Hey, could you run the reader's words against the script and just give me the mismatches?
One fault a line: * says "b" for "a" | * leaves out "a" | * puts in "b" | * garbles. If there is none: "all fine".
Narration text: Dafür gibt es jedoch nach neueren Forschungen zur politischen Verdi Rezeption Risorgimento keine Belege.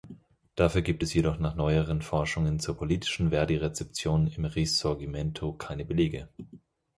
* puts in "im"